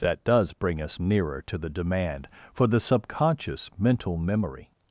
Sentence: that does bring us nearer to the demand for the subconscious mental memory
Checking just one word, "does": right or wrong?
right